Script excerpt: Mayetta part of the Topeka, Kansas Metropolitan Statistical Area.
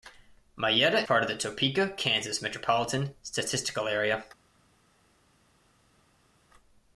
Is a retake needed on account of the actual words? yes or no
no